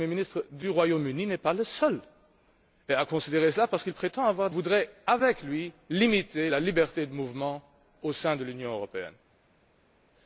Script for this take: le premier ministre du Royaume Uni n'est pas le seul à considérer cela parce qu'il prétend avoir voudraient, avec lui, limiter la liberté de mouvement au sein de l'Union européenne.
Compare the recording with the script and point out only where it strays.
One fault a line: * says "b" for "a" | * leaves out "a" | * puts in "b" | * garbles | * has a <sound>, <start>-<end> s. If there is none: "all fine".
all fine